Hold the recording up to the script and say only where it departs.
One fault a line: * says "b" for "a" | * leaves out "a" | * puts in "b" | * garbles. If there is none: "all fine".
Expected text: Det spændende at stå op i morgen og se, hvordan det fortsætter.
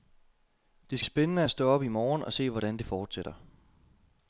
all fine